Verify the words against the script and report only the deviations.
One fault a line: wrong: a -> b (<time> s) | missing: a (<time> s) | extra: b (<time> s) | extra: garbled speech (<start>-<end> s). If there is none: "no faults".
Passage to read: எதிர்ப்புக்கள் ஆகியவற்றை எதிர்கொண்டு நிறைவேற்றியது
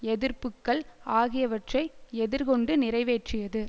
no faults